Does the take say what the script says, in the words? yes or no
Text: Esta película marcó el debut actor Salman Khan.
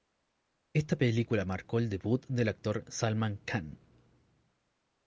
no